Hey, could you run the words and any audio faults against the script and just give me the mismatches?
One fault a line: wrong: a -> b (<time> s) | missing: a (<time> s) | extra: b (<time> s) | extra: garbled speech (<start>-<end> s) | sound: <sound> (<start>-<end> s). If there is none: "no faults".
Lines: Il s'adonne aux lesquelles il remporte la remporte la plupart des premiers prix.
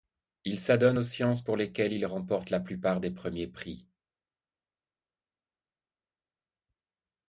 extra: sciences pour (1.0 s)
missing: remporte la (2.6 s)